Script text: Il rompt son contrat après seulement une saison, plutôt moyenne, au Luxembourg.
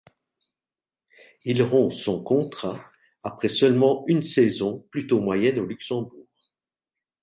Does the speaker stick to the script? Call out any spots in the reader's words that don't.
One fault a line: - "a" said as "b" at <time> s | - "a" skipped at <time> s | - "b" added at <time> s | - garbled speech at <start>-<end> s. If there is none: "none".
none